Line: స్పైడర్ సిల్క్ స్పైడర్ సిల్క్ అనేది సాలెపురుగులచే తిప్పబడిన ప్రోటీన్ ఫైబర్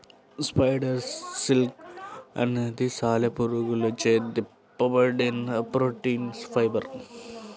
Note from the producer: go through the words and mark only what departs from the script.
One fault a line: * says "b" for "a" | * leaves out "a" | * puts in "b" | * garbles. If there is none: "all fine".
* leaves out "స్పైడర్ సిల్క్"